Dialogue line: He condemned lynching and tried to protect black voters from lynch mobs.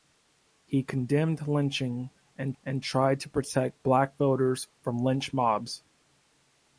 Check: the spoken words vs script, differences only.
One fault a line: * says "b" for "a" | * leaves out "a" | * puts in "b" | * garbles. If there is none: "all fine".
* puts in "and"